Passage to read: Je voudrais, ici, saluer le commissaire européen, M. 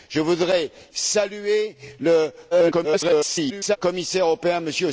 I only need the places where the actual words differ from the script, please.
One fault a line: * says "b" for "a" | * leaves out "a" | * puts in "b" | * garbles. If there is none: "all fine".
* leaves out "ici"
* garbles